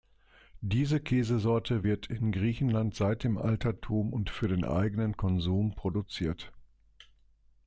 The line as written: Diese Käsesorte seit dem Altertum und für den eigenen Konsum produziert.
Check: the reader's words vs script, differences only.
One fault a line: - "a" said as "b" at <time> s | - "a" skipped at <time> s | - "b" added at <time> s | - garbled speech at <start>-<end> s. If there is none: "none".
- "wird in Griechenland" added at 1.8 s